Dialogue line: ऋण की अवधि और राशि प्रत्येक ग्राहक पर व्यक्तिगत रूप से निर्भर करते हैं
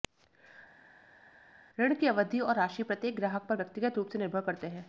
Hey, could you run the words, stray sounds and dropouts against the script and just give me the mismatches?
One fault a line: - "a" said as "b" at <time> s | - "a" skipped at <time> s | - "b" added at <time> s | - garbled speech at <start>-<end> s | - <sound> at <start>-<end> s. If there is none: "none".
none